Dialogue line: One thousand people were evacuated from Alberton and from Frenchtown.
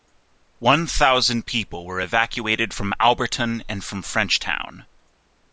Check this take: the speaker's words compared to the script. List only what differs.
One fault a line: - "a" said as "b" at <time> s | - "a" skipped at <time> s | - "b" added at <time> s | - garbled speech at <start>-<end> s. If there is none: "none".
none